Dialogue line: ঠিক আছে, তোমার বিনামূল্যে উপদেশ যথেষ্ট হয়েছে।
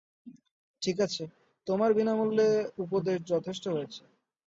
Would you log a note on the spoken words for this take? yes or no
no